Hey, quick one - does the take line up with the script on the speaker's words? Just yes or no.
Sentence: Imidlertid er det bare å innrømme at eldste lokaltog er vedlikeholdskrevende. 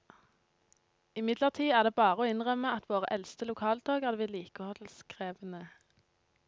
no